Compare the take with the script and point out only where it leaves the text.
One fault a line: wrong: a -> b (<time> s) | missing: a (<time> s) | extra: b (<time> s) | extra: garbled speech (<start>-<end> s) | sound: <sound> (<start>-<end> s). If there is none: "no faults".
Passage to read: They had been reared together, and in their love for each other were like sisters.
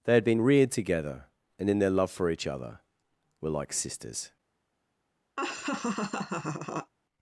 sound: laugh (5.4-6.9 s)